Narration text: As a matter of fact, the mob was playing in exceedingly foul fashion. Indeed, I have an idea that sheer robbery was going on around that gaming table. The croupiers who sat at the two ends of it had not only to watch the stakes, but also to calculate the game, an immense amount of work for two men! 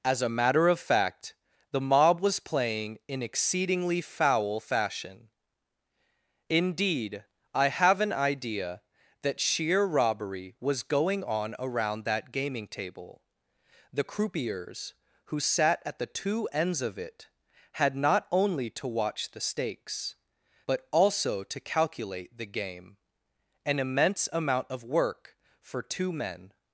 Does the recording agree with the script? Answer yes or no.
yes